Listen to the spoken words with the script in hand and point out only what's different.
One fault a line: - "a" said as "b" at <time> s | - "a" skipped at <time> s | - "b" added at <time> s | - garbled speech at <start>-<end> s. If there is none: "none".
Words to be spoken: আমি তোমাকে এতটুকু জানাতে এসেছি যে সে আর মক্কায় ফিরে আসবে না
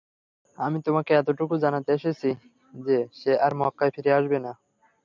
none